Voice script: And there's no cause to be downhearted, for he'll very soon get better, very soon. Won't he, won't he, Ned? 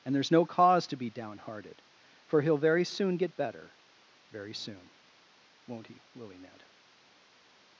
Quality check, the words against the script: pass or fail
fail